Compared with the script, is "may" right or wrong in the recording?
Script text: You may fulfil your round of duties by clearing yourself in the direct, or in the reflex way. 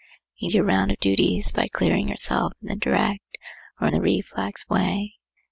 wrong